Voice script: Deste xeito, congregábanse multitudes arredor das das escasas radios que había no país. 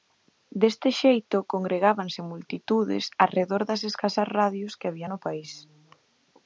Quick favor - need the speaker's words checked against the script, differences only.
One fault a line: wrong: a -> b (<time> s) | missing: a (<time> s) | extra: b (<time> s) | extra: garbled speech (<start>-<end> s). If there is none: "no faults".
missing: das (3.8 s)